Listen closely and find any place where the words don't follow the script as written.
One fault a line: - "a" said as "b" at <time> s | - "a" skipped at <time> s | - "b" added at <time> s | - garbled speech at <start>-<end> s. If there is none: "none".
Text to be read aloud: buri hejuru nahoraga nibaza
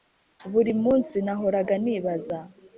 - "hejuru" said as "munsi" at 0.8 s